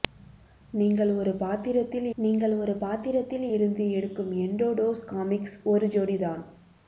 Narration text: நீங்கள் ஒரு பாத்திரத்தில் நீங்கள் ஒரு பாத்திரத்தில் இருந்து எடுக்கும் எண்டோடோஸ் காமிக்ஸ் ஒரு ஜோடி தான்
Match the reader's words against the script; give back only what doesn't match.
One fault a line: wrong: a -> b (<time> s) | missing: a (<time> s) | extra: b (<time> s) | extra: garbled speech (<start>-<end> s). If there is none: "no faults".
no faults